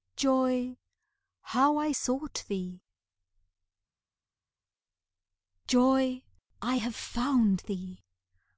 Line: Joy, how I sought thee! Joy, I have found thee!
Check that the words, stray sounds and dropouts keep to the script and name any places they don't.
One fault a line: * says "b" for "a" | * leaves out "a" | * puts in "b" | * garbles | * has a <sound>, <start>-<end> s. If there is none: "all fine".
all fine